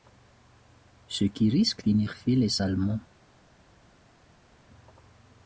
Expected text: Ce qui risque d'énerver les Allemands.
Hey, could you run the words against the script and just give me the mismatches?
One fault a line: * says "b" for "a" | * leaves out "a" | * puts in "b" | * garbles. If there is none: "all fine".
all fine